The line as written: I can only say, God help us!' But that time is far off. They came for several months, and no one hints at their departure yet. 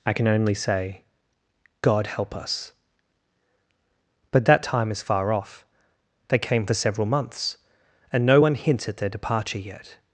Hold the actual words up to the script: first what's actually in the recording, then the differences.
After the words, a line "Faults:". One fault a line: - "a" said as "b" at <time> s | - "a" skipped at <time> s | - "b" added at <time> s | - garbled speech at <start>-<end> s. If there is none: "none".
I can only say, God help us!' But that time is far off. They came for several months, and no one hints at their departure yet.
Faults:
none